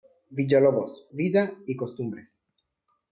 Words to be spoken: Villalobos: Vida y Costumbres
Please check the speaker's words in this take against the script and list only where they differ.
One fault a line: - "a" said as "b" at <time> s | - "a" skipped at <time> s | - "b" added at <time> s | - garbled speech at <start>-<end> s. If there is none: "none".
none